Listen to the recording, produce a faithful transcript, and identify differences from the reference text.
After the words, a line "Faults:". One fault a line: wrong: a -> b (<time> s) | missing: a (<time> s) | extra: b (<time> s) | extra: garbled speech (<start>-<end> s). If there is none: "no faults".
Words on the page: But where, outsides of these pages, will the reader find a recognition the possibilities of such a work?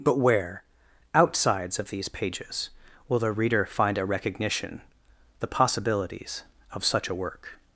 But where, outsides of these pages, will the reader find a recognition the possibilities of such a work?
Faults:
no faults